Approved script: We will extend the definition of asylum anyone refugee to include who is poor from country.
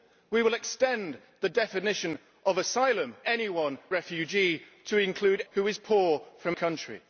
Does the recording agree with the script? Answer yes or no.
yes